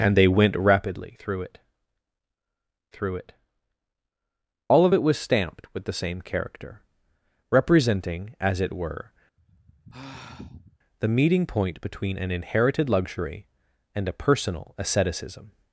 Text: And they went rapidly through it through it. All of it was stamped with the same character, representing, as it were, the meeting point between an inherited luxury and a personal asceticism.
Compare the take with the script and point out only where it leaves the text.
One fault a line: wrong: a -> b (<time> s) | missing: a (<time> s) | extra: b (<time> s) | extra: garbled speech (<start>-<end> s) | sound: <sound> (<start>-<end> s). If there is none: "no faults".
sound: sigh (9.4-10.8 s)